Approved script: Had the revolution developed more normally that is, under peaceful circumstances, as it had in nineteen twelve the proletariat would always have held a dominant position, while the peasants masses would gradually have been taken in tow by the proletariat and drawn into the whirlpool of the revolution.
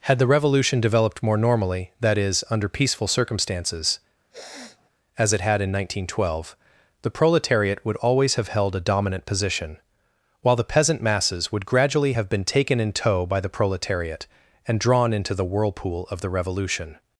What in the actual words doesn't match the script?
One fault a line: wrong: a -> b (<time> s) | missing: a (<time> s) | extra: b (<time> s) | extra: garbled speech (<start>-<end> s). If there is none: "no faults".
wrong: peasants -> peasant (10.7 s)